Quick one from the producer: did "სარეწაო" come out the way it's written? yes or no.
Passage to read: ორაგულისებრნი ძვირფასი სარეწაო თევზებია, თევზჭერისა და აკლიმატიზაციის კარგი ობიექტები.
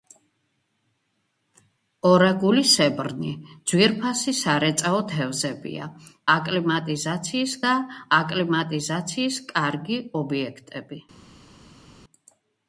yes